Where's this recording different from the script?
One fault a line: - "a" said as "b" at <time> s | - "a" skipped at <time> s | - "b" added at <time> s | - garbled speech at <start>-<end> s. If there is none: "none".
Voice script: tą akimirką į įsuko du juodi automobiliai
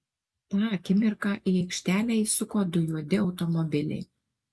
- "aikštelę" added at 1.6 s